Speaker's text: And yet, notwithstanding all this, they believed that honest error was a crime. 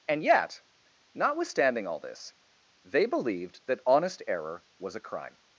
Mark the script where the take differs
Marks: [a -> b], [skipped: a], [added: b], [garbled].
And yet, notwithstanding all this, they believed that honest error was a crime.